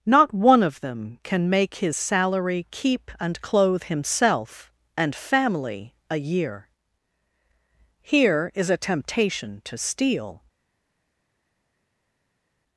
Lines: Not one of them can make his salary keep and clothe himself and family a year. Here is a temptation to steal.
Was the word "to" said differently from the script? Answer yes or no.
no